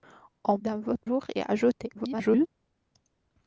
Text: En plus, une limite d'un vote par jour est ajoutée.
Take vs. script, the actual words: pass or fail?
fail